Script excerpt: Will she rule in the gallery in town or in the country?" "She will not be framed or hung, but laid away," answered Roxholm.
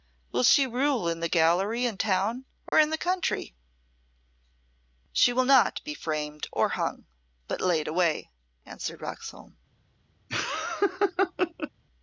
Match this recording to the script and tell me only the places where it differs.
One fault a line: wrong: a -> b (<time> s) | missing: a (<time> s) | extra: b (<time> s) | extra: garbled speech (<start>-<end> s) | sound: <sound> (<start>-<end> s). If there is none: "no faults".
sound: dropout (2.7-2.7 s)
sound: laugh (10.3-11.7 s)